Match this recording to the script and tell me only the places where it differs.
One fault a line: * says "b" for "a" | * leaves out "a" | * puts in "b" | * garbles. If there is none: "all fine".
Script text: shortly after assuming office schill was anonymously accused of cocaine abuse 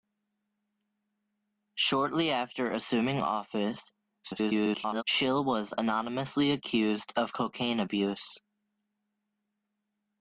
* garbles